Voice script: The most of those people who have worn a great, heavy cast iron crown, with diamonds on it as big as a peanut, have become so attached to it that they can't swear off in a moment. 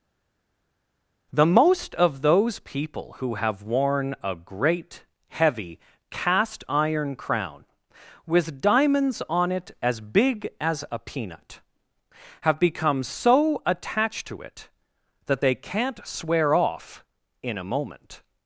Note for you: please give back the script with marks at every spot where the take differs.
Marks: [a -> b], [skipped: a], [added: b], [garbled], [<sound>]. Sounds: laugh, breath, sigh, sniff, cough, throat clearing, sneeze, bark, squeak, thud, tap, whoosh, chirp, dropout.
The most of those people who have worn a great, heavy cast iron crown, with diamonds on it as big as a peanut, have become so attached to it that they can't swear off in a moment.